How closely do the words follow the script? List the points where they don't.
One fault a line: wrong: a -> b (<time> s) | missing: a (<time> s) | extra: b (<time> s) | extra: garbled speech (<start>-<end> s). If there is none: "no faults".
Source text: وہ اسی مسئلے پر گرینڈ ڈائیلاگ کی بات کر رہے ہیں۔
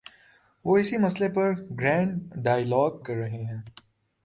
missing: کی بات (3.0 s)